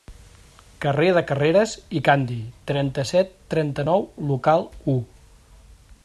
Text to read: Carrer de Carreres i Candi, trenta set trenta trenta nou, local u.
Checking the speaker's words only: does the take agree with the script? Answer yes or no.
no